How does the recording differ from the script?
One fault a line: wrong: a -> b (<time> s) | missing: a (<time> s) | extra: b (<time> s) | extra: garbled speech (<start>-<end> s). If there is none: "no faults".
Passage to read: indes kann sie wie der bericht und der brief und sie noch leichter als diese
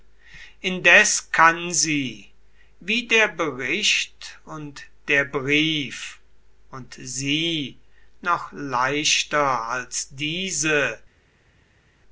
no faults